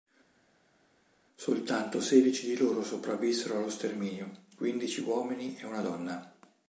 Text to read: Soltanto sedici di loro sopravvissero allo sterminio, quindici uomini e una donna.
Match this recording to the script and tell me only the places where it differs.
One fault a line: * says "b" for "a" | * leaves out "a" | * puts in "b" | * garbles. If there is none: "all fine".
all fine